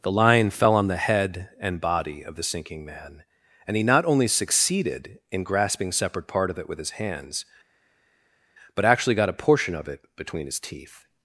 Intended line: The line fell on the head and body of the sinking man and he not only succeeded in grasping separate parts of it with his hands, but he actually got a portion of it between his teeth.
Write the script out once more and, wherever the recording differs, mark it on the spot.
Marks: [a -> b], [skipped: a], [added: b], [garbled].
The line fell on the head and body of the sinking man and he not only succeeded in grasping separate [parts -> part] of it with his hands, but [skipped: he] actually got a portion of it between his teeth.